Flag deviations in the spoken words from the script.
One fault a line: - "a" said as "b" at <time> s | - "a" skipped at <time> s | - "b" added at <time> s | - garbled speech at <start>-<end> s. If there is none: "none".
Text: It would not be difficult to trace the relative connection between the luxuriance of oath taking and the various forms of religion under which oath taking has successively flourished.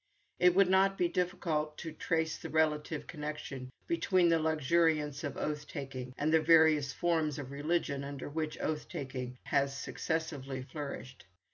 none